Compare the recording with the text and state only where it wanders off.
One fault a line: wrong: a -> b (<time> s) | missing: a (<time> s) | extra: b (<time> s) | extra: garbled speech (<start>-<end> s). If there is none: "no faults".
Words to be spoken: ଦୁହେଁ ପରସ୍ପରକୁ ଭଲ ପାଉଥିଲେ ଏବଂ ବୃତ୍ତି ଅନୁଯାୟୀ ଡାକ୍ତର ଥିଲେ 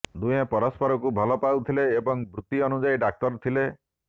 no faults